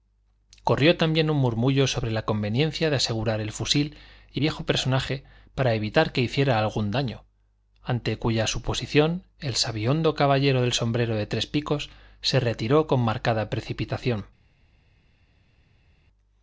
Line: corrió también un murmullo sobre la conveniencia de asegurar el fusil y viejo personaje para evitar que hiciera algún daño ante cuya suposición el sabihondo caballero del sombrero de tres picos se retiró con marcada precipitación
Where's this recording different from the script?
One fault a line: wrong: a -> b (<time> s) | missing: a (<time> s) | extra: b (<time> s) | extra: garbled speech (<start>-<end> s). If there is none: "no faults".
no faults